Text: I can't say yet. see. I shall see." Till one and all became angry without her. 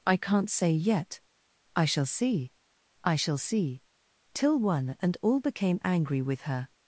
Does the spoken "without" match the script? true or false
false